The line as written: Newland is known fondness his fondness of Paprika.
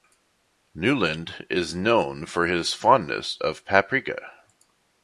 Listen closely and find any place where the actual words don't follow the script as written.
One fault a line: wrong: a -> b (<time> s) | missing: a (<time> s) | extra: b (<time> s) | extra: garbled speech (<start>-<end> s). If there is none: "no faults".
wrong: fondness -> for (2.2 s)